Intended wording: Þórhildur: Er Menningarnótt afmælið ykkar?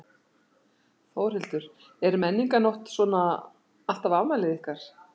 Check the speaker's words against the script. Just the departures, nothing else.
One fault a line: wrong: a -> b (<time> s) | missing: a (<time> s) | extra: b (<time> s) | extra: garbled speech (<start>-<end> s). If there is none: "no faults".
extra: svona alltaf (3.0 s)